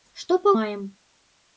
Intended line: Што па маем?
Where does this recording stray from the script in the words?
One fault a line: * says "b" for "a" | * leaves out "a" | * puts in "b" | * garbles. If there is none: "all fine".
all fine